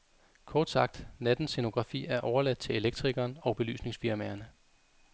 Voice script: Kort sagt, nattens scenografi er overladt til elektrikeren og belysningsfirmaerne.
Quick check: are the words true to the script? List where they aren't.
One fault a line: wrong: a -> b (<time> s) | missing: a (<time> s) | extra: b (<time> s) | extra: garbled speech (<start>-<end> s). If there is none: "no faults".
no faults